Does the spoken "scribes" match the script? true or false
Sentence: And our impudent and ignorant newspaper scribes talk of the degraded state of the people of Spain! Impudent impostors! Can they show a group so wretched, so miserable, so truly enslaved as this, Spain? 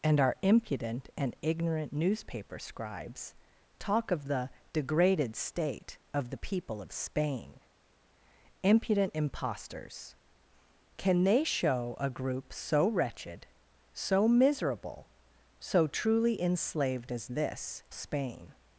true